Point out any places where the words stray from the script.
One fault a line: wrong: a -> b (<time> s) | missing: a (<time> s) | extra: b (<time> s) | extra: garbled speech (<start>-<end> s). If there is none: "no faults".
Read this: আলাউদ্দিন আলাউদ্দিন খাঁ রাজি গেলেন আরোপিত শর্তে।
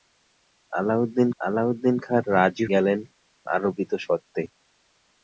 no faults